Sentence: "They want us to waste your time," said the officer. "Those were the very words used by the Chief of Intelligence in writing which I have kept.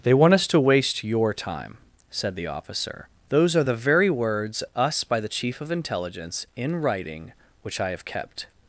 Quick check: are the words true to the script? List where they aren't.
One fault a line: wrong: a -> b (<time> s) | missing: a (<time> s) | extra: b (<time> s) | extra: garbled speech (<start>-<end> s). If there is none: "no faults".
wrong: were -> are (3.5 s)
wrong: used -> us (4.7 s)